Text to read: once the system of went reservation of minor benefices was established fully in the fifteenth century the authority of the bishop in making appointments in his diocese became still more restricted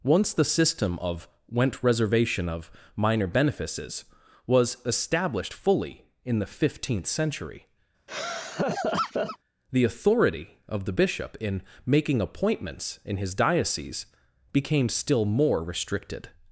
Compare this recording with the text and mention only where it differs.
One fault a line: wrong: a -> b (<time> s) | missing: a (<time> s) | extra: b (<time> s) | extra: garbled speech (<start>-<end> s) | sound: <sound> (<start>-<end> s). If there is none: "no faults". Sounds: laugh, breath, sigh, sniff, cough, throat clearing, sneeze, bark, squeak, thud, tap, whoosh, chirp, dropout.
sound: laugh (8.1-9.4 s)